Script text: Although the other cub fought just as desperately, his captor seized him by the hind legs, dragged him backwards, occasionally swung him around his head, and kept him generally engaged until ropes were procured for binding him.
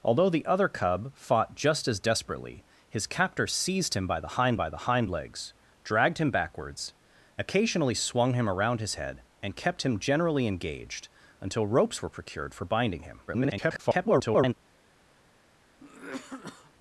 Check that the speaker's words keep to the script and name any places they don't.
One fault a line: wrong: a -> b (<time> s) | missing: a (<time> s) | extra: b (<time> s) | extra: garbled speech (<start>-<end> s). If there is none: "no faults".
extra: by the hind (4.6 s)
extra: garbled speech (13.3-14.5 s)